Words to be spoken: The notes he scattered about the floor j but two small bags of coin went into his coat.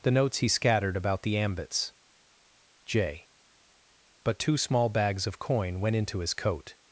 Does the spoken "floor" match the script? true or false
false